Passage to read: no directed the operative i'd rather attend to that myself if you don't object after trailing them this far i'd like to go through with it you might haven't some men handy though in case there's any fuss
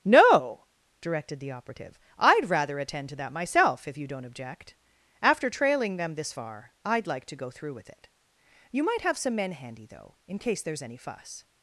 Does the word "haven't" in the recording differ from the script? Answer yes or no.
yes